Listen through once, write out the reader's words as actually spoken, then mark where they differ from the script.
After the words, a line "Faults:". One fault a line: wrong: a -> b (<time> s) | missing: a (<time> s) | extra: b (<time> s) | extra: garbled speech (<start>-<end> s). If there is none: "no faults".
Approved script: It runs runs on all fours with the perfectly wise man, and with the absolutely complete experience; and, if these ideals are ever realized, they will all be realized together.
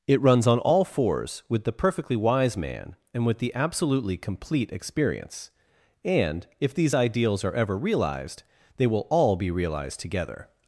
It runs on all fours with the perfectly wise man, and with the absolutely complete experience; and, if these ideals are ever realized, they will all be realized together.
Faults:
missing: runs (0.5 s)